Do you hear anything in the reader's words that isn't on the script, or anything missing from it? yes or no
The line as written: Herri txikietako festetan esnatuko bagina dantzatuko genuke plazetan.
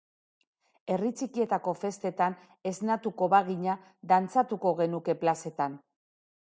no